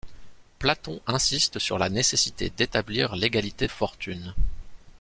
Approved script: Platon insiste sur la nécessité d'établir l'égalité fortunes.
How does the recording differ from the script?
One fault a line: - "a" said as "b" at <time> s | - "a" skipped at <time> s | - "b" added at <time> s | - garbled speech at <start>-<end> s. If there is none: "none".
none